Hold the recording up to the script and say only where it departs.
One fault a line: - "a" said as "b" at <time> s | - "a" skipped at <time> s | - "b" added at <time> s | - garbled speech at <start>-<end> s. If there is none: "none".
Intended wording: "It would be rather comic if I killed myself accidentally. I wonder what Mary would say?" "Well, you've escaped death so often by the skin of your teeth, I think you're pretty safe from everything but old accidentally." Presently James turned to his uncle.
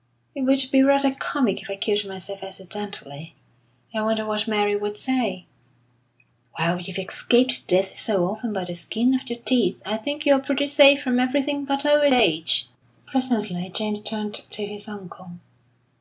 - "accidentally" said as "age" at 12.1 s